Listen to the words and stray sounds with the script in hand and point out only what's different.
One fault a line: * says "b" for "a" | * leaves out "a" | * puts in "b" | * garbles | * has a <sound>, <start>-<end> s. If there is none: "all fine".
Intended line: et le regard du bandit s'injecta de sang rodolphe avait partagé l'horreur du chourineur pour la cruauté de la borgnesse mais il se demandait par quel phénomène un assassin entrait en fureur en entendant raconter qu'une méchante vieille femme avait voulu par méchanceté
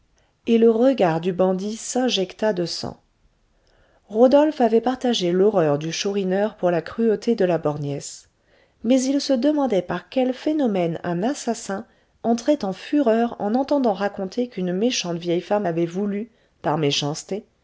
all fine